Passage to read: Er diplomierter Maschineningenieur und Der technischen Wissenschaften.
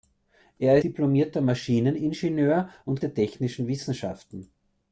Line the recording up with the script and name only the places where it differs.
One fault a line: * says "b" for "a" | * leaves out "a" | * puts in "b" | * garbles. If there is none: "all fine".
all fine